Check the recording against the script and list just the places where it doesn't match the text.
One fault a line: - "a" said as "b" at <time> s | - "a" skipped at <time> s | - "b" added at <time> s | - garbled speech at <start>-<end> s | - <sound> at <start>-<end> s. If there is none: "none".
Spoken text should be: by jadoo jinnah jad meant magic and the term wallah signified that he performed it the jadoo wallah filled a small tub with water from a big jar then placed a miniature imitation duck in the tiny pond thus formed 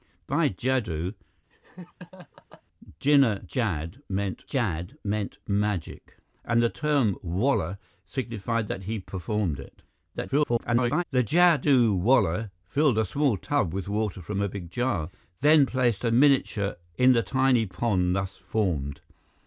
- laugh at 1.5-2.6 s
- "jad meant" added at 4.5 s
- garbled speech at 10.1-11.0 s
- "imitation duck" skipped at 16.8 s